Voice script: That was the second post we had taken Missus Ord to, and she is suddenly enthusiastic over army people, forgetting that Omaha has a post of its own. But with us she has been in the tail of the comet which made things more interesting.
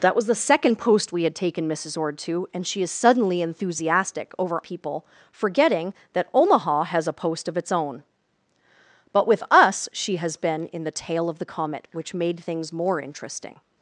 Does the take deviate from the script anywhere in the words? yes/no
yes